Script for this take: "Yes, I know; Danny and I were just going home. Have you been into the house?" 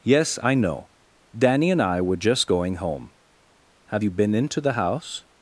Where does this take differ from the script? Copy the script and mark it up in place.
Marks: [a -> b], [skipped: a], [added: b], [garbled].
"Yes, I know; Danny and I were just going home. Have you been into the house?"